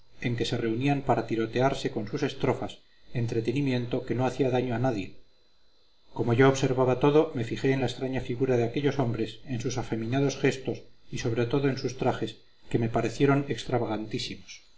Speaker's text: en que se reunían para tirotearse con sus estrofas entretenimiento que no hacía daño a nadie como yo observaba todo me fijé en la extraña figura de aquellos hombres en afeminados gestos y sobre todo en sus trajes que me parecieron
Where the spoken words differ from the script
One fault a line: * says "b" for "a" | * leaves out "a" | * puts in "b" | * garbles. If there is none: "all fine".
* puts in "sus"